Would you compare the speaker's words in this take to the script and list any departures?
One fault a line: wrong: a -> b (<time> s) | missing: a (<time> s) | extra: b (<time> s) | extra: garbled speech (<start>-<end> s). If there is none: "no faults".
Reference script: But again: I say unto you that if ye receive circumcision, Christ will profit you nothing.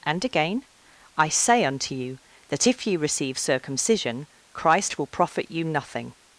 wrong: But -> And (0.0 s)